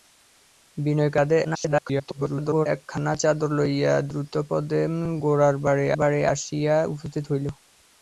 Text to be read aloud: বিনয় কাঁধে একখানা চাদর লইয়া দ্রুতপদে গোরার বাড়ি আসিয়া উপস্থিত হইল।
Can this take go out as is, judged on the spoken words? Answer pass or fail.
fail